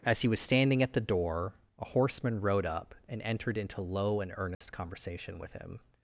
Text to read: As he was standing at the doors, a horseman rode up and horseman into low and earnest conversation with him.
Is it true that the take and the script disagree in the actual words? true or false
true